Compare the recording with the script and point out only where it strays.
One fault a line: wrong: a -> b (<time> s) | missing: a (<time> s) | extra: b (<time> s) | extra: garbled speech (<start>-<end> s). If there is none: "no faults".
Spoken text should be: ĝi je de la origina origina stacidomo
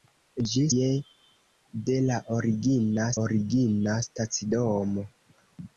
no faults